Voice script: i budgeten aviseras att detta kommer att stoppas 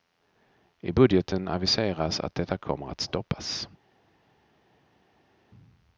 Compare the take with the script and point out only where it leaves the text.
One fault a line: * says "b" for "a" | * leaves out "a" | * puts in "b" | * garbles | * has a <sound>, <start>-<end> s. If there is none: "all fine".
all fine